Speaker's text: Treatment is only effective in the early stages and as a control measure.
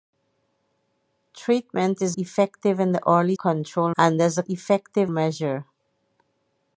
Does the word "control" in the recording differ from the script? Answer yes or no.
yes